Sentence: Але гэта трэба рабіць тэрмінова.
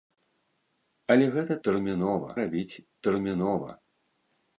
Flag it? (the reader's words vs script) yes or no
yes